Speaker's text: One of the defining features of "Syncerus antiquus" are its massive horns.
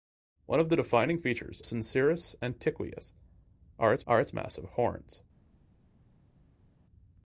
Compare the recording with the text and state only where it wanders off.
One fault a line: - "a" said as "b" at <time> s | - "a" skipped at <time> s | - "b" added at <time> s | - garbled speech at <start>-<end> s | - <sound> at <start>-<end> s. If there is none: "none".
- "of" skipped at 1.6 s
- "are its" added at 4.1 s